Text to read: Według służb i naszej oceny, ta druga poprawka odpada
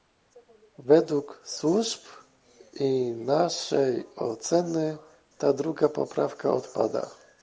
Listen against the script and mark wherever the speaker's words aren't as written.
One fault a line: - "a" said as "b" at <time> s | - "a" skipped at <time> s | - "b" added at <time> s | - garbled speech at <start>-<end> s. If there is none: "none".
none